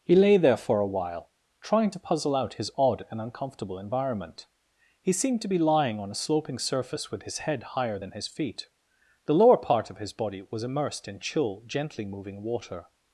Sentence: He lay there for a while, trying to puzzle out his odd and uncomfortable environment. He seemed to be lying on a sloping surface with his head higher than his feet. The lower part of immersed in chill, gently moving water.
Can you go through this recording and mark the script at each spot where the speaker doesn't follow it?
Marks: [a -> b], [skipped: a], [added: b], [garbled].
He lay there for a while, trying to puzzle out his odd and uncomfortable environment. He seemed to be lying on a sloping surface with his head higher than his feet. The lower part of [added: his body was] immersed in chill, gently moving water.